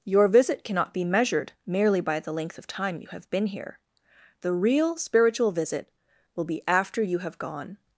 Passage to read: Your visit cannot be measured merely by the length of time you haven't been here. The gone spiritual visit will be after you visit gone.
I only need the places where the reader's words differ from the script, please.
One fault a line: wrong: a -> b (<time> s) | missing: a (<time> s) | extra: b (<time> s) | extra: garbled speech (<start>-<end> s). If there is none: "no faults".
wrong: haven't -> have (3.1 s)
wrong: gone -> real (4.5 s)
wrong: visit -> have (7.2 s)